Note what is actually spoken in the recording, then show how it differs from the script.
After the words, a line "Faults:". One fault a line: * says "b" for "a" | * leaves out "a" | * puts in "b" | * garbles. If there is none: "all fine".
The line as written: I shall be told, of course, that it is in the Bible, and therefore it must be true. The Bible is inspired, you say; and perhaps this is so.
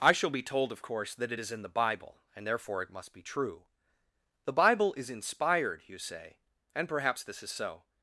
I shall be told, of course, that it is in the Bible, and therefore it must be true. The Bible is inspired, you say; and perhaps this is so.
Faults:
all fine